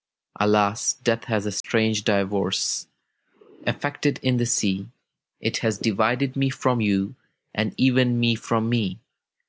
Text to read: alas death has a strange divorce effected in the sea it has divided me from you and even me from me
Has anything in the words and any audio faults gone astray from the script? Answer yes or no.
yes